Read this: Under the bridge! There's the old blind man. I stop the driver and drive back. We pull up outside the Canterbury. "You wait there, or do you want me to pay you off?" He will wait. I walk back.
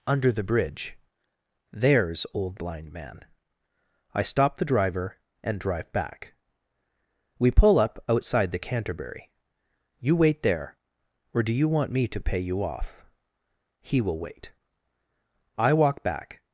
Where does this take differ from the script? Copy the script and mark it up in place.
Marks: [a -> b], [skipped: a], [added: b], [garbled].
Under the bridge! There's [skipped: the] old blind man. I stop the driver and drive back. We pull up outside the Canterbury. "You wait there, or do you want me to pay you off?" He will wait. I walk back.